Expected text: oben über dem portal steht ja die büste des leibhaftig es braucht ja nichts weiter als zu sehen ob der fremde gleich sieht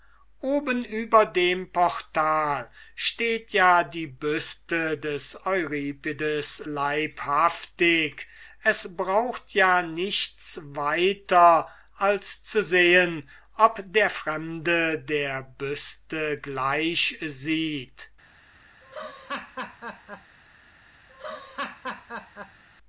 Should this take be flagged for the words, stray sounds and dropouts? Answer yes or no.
yes